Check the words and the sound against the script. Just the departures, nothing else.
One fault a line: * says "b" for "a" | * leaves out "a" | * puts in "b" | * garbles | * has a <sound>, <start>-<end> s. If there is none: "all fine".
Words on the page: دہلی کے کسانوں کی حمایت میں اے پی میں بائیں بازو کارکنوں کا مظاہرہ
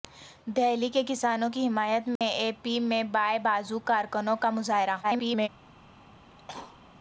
* has a dropout, 2.2-2.2 s
* garbles
* has a cough, 6.3-6.8 s